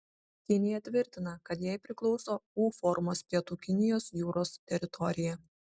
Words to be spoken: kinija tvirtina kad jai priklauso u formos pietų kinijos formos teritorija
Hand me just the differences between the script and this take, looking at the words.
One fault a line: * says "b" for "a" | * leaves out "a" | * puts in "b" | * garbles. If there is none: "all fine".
* says "jūros" for "formos"